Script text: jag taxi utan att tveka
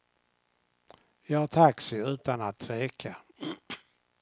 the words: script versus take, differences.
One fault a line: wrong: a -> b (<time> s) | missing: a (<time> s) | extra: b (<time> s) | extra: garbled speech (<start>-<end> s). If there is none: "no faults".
no faults